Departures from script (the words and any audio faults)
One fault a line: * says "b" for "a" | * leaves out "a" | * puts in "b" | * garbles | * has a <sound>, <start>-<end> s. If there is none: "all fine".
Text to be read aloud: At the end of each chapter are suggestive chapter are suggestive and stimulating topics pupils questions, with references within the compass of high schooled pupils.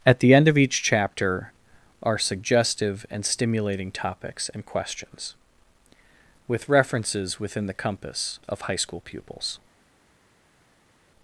* leaves out "chapter are suggestive"
* says "and" for "pupils"
* says "school" for "schooled"